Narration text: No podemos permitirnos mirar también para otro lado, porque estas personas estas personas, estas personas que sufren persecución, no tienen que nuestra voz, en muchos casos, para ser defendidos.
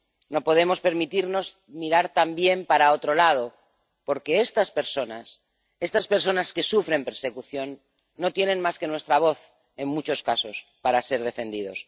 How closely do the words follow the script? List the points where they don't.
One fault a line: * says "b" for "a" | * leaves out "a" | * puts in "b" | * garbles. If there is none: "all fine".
* leaves out "estas personas"
* puts in "más"